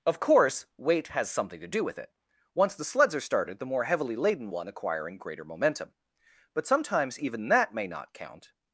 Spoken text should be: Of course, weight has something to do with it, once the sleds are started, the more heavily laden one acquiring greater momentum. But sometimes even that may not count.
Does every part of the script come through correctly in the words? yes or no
yes